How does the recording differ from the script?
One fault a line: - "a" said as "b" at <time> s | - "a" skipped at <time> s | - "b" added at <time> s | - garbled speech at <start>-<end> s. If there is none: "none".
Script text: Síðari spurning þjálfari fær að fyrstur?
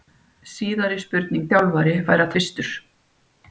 none